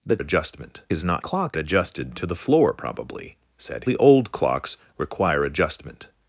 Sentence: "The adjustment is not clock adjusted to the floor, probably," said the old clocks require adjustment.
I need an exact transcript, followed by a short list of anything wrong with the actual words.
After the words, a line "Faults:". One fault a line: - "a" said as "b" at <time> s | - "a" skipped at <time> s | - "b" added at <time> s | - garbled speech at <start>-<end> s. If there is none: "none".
"The adjustment is not clock adjusted to the floor, probably," said the old clocks require adjustment.
Faults:
none